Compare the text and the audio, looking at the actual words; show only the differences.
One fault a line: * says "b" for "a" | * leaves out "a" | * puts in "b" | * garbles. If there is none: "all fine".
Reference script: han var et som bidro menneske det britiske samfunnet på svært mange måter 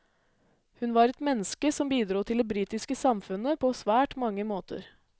* says "hun" for "han"
* puts in "menneske"
* says "til" for "menneske"